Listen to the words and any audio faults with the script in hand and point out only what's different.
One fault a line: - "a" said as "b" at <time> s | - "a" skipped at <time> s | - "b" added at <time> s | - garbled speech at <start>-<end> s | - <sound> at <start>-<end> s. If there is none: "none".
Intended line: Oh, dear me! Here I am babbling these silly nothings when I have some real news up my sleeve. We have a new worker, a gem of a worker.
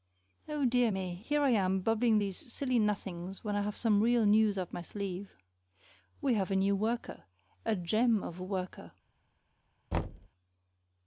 - thud at 9.9-10.3 s